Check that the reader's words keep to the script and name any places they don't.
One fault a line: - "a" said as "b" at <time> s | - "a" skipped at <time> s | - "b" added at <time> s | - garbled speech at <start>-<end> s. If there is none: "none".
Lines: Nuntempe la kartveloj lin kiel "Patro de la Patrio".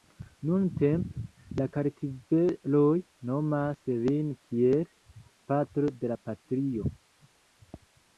- "nomas" added at 3.3 s